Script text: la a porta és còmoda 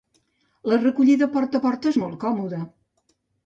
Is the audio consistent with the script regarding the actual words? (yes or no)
no